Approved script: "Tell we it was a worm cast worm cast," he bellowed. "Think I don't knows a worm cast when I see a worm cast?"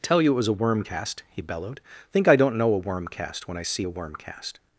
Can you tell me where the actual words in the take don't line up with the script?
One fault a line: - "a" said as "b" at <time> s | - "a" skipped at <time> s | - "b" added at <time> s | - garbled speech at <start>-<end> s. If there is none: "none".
- "we" said as "you" at 0.2 s
- "worm cast" skipped at 1.2 s
- "knows" said as "know" at 2.6 s